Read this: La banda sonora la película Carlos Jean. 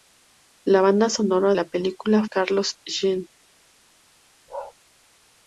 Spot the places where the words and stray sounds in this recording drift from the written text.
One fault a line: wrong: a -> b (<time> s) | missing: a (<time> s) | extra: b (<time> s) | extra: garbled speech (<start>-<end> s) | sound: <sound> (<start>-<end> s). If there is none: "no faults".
sound: bark (4.5-4.7 s)